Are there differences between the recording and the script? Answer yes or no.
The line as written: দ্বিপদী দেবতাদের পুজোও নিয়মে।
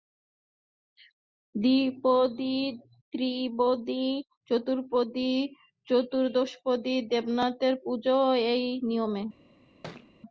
yes